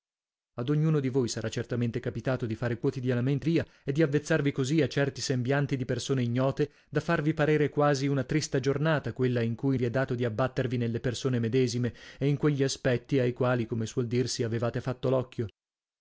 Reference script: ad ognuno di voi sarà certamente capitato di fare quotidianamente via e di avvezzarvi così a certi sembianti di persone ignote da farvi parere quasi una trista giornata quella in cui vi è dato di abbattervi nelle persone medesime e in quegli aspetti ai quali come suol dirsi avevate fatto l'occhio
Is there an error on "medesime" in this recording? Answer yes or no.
no